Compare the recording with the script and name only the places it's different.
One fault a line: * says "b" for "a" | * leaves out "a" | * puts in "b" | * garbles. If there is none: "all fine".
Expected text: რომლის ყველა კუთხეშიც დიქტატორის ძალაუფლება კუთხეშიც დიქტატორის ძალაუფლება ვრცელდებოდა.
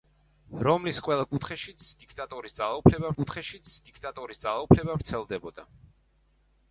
all fine